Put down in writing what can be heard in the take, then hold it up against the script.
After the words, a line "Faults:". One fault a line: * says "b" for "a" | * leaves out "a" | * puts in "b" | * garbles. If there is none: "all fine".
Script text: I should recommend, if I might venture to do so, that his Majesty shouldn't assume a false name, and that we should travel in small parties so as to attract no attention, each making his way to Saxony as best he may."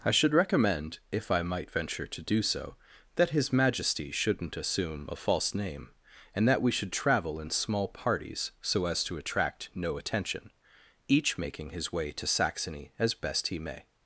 I should recommend, if I might venture to do so, that his Majesty shouldn't assume a false name, and that we should travel in small parties so as to attract no attention, each making his way to Saxony as best he may."
Faults:
all fine